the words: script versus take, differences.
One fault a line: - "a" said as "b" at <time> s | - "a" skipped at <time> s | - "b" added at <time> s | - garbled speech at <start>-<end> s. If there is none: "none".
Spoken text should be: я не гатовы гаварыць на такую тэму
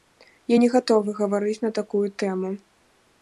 none